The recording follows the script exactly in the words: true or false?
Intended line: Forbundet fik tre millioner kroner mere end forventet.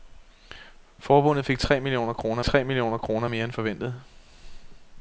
false